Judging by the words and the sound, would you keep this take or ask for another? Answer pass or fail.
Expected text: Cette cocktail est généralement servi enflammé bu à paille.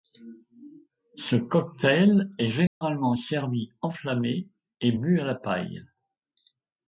fail